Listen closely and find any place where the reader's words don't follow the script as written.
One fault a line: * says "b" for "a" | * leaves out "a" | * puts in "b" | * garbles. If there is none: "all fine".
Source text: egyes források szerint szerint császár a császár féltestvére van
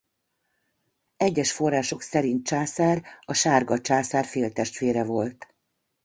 * leaves out "szerint"
* puts in "sárga"
* says "volt" for "van"